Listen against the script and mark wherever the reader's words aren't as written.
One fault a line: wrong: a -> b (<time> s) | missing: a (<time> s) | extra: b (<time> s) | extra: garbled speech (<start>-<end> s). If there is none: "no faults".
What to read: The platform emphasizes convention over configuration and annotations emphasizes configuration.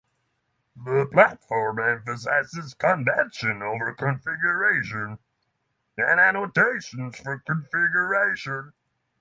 wrong: emphasizes -> for (7.2 s)